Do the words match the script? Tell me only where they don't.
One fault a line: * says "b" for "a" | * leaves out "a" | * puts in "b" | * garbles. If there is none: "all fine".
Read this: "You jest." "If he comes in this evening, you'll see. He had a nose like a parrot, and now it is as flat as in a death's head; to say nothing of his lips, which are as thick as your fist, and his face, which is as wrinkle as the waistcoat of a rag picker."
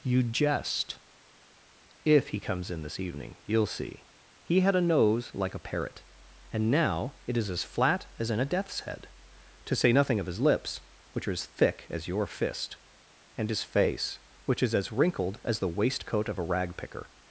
* says "wrinkled" for "wrinkle"